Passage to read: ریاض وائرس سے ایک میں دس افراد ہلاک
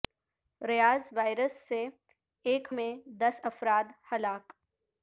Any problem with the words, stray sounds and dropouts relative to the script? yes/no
no